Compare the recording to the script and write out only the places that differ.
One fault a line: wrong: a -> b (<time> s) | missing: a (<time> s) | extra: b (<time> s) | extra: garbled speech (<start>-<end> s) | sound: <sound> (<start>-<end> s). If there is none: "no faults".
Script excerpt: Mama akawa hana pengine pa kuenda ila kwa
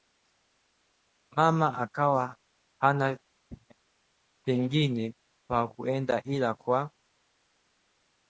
no faults